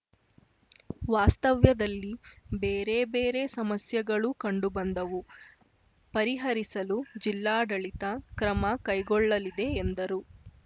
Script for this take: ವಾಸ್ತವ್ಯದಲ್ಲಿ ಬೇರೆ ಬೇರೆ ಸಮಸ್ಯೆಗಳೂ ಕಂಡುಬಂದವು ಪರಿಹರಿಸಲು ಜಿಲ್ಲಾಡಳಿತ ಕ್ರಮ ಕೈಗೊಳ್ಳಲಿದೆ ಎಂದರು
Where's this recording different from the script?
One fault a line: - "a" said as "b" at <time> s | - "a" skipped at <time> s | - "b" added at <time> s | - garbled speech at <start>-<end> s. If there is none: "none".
none